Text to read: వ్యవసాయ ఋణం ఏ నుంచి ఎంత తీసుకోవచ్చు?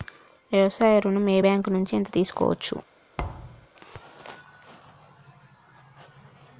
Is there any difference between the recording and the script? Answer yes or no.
yes